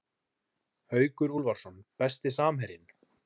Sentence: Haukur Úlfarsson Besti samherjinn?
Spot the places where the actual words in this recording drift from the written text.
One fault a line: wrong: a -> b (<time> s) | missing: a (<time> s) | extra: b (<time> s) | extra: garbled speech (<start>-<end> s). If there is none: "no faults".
no faults